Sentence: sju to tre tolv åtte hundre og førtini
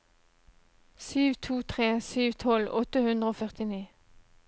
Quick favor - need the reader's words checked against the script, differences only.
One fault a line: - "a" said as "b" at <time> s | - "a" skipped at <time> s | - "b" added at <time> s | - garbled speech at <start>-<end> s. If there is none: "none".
- "sju" added at 2.1 s